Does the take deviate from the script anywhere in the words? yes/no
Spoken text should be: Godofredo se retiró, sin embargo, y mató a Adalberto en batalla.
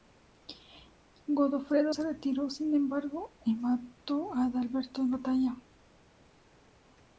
no